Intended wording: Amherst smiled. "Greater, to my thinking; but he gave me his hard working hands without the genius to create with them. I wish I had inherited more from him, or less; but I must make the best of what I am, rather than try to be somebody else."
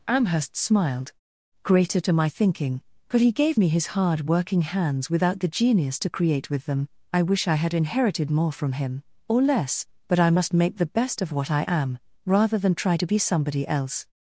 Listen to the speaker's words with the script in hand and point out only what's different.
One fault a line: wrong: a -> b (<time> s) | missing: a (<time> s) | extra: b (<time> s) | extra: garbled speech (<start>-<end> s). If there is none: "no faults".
no faults